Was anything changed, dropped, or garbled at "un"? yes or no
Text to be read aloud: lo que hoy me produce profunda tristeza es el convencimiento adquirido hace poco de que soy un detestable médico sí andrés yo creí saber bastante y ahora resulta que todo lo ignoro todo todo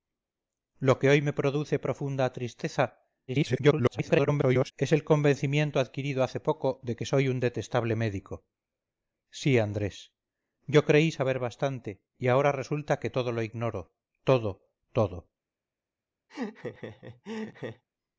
no